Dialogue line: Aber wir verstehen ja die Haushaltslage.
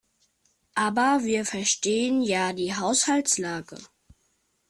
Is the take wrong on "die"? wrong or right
right